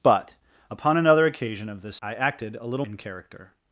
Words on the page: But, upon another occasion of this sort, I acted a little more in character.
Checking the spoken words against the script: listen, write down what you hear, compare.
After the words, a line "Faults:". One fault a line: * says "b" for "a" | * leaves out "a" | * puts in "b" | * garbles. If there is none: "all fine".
But, upon another occasion of this I acted a little in character.
Faults:
* leaves out "sort"
* leaves out "more"